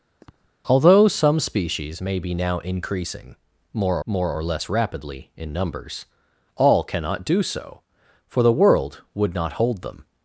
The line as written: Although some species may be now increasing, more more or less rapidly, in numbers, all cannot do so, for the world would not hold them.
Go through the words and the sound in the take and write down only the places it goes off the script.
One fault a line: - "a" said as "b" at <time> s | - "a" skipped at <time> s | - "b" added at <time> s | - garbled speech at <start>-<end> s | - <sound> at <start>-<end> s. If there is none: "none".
- sniff at 0.2-0.5 s